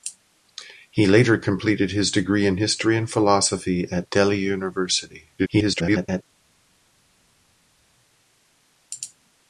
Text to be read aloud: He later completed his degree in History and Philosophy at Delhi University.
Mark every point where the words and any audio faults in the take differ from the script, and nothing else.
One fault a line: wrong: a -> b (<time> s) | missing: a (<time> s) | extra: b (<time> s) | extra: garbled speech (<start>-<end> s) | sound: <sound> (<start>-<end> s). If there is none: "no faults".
extra: garbled speech (5.4-6.2 s)